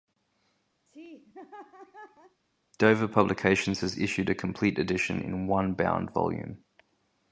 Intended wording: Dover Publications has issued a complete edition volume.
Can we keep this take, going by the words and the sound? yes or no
no